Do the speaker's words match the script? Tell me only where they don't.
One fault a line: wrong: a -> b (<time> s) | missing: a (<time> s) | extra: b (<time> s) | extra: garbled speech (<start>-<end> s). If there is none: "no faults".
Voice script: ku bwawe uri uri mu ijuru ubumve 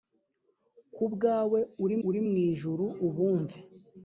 no faults